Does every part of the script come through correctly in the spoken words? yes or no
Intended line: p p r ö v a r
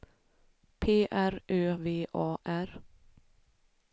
no